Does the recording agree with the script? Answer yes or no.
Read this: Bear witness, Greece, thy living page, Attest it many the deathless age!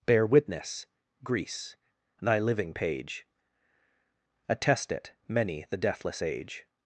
yes